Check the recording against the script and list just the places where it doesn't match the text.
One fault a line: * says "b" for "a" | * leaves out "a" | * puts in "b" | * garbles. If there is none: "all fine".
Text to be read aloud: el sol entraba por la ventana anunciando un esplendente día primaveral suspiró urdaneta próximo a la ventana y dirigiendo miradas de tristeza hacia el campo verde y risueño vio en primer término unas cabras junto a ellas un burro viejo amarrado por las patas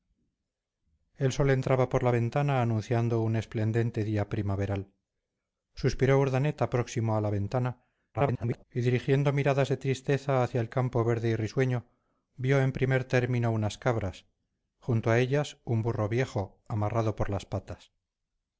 * garbles